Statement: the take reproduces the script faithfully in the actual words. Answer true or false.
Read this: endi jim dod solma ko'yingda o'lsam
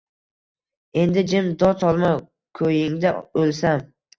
true